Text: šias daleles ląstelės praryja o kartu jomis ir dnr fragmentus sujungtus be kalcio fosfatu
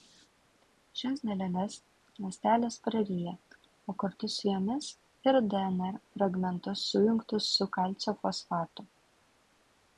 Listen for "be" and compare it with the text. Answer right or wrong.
wrong